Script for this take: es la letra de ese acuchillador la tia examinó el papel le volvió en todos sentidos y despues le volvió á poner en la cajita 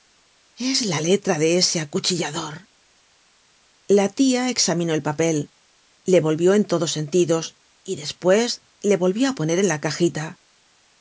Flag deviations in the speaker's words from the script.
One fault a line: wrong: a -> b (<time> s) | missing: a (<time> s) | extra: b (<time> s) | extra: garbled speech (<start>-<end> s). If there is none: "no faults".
no faults